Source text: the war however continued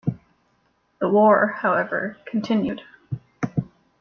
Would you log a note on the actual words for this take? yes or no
no